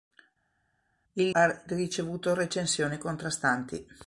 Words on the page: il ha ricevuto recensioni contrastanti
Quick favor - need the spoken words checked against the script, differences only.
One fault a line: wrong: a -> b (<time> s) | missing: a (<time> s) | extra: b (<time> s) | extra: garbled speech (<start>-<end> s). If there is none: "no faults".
no faults